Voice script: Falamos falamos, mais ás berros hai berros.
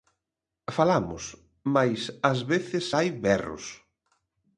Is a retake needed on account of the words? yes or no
yes